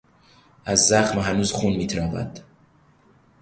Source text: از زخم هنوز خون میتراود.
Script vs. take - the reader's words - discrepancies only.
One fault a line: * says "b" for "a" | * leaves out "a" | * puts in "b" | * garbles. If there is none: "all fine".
all fine